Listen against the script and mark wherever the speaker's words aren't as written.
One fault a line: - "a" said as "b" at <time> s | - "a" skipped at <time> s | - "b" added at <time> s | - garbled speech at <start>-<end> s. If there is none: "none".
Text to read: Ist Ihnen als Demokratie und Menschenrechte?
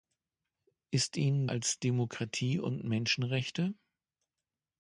none